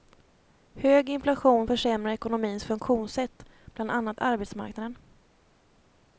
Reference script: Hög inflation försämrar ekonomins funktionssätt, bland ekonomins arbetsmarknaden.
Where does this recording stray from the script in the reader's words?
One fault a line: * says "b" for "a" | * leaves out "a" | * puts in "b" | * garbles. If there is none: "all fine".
* says "annat" for "ekonomins"